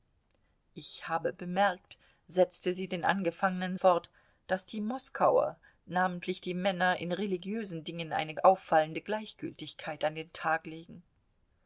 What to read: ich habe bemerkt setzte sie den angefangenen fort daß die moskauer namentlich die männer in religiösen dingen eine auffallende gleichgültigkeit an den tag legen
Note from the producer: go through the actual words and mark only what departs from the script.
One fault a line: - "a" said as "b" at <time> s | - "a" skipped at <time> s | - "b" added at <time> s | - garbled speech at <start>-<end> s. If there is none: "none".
none